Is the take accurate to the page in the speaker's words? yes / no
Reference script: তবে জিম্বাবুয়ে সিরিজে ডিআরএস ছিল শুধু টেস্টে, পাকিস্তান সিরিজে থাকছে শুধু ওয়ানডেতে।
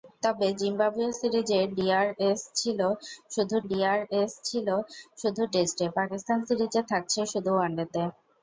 no